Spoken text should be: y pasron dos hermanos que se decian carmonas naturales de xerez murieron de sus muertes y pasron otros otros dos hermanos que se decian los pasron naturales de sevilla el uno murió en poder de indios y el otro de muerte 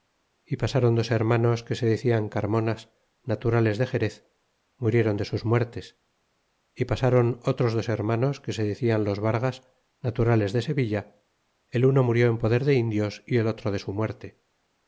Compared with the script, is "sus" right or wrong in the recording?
right